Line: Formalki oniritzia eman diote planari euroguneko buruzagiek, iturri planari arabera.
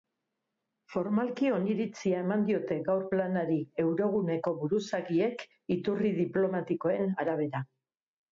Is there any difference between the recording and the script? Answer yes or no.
yes